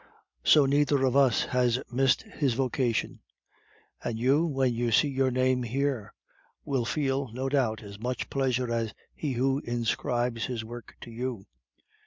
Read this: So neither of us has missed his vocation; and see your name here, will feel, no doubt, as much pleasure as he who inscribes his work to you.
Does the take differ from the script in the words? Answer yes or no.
yes